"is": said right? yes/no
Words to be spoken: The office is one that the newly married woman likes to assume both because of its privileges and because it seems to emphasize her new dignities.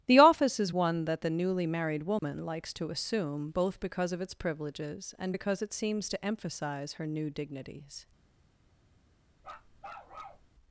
yes